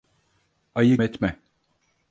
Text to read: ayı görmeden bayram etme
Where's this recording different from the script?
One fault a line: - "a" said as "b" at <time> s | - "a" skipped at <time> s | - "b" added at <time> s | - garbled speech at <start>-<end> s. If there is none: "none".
- "görmeden bayram" skipped at 1.0 s